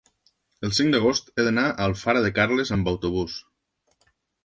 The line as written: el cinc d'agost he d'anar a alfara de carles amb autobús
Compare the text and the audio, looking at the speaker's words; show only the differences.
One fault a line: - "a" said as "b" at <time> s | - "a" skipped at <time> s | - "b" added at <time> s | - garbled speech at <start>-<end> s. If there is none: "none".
none